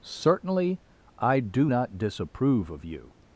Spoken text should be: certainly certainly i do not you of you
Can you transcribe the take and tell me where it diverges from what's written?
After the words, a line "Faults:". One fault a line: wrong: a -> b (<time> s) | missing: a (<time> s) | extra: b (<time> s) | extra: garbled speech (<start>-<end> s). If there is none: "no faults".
certainly i do not disapprove of you
Faults:
missing: certainly (0.8 s)
wrong: you -> disapprove (2.0 s)